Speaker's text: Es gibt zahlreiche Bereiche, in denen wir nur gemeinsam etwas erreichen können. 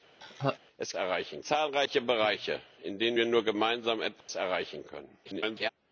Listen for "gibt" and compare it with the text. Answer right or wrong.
wrong